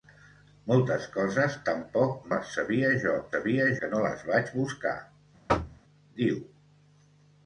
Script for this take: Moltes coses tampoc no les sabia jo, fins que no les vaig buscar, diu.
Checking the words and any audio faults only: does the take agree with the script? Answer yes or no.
no